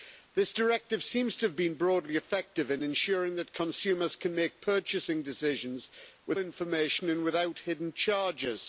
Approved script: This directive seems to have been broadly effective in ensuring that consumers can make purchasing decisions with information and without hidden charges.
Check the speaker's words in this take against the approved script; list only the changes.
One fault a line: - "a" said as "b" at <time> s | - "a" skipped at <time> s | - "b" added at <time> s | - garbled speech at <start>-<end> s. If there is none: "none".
none